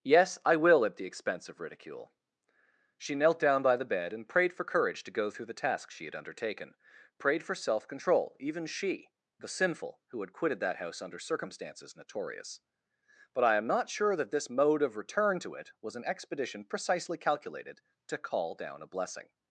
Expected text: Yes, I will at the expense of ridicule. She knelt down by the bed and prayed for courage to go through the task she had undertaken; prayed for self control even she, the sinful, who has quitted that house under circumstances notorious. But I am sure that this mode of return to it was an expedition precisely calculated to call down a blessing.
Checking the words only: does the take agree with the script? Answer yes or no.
no